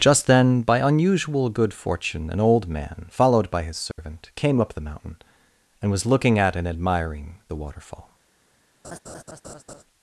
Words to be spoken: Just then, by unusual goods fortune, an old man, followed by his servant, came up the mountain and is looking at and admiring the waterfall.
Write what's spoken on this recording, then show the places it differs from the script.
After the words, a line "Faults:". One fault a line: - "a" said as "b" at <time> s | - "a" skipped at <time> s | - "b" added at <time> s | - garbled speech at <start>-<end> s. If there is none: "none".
Just then, by unusual good fortune, an old man, followed by his servant, came up the mountain and was looking at and admiring the waterfall.
Faults:
- "goods" said as "good" at 1.5 s
- "is" said as "was" at 5.9 s